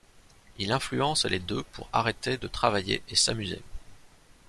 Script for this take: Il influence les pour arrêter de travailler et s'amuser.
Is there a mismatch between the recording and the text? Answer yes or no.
yes